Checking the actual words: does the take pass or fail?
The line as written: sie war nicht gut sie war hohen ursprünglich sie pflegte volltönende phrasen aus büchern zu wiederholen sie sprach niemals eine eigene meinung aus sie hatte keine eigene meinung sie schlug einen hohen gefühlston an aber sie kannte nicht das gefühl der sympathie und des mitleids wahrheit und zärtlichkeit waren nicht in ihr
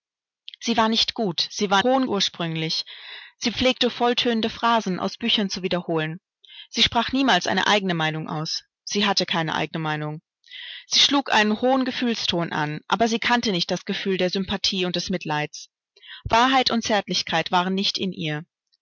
pass